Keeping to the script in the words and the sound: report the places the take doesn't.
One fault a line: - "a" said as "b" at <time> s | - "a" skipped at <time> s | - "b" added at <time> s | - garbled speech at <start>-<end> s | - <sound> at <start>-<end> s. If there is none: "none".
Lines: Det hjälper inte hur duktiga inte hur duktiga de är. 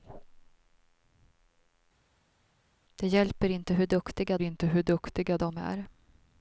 none